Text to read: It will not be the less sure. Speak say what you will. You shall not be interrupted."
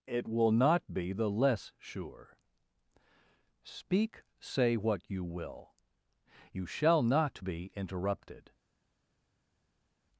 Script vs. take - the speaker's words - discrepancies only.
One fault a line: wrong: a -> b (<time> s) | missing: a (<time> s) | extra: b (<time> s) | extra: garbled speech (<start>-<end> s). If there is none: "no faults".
no faults